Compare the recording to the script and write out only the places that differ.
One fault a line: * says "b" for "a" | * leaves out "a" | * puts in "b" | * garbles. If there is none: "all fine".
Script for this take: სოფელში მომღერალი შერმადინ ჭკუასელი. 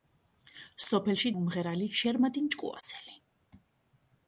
all fine